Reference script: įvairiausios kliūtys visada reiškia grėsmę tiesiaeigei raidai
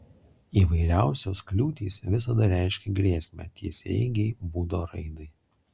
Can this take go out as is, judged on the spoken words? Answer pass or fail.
fail